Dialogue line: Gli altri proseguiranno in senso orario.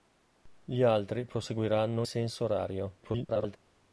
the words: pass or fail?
fail